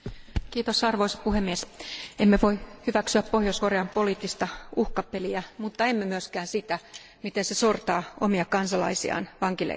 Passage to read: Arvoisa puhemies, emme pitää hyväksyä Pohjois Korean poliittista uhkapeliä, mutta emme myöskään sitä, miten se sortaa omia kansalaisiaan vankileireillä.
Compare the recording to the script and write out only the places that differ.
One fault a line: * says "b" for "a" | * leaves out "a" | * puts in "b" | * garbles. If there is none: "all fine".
* says "voi" for "pitää"